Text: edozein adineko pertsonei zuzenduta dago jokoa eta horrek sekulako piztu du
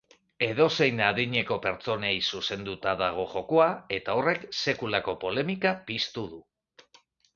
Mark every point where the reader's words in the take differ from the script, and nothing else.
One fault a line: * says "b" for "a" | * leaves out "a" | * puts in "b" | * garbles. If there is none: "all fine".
* puts in "polemika"